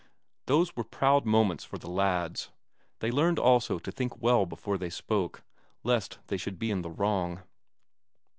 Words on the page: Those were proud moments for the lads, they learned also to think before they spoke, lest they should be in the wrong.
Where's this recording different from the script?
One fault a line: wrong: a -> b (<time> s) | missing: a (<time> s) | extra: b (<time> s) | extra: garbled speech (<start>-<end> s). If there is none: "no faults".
extra: well (4.2 s)